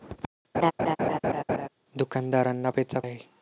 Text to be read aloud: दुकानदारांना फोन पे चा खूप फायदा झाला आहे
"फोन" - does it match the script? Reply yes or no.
no